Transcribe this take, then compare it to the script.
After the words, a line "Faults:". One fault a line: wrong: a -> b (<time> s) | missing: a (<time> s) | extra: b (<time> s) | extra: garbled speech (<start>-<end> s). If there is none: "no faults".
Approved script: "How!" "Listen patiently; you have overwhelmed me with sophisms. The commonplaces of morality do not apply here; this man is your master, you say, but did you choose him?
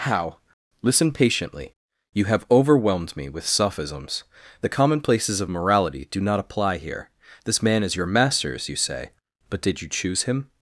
"How!" "Listen patiently; you have overwhelmed me with sophisms. The commonplaces of morality do not apply here; this man is your masters, you say, but did you choose him?
Faults:
wrong: master -> masters (8.1 s)